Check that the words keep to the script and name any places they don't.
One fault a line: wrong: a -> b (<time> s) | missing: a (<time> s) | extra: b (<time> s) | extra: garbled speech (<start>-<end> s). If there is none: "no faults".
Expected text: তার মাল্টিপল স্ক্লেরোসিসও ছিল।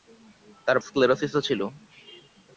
missing: মাল্টিপল (0.8 s)